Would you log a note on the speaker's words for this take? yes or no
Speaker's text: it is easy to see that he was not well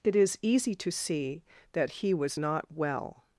no